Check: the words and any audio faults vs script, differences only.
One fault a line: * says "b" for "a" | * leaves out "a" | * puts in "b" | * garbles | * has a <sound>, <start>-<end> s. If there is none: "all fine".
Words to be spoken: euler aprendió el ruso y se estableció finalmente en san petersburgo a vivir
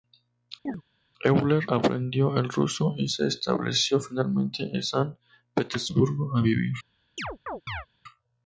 * has a chirp, 0.7-0.8 s
* has a chirp, 7.2-7.9 s